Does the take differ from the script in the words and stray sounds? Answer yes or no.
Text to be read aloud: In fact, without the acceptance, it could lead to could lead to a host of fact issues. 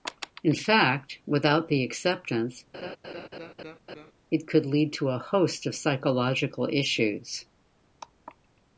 yes